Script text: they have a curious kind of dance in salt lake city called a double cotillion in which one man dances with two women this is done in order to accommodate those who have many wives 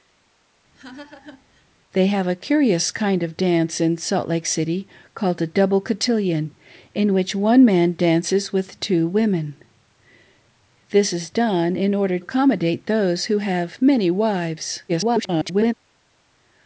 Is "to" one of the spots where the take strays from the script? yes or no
yes